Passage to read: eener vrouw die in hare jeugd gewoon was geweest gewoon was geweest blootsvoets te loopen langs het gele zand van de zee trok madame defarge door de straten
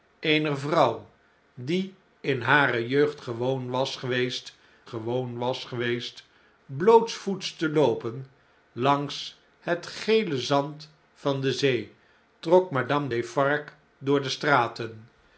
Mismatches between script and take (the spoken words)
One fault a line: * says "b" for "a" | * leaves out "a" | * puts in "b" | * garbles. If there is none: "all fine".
all fine